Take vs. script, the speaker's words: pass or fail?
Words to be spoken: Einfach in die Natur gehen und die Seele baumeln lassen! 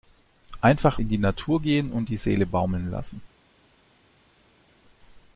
pass